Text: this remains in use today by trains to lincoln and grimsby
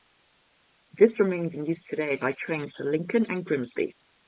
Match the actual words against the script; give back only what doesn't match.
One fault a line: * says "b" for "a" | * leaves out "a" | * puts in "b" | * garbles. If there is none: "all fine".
all fine